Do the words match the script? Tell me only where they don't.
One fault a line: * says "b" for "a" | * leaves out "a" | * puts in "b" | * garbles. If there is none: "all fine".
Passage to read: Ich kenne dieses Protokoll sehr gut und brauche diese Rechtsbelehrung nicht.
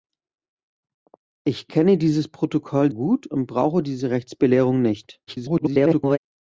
* leaves out "sehr"
* garbles